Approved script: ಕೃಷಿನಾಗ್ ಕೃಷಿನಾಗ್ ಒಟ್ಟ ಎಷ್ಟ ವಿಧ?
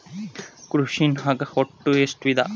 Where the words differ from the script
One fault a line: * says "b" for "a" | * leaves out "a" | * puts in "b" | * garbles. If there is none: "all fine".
* leaves out "ಕೃಷಿನಾಗ್"